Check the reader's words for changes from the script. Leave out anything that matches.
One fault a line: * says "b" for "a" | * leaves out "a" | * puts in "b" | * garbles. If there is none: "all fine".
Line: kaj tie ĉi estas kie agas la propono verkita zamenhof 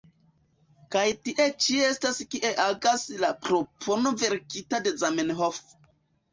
* puts in "de"